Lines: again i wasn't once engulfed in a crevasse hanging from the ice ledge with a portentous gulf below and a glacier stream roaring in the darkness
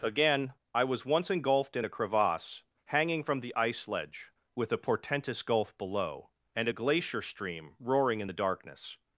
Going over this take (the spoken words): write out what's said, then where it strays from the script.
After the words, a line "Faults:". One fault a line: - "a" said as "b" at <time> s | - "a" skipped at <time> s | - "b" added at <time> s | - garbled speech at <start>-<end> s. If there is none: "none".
again i was once engulfed in a crevasse hanging from the ice ledge with a portentous gulf below and a glacier stream roaring in the darkness
Faults:
- "wasn't" said as "was" at 0.8 s